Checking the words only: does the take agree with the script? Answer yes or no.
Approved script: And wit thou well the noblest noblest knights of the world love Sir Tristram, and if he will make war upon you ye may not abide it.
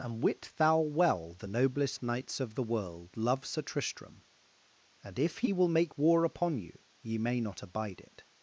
no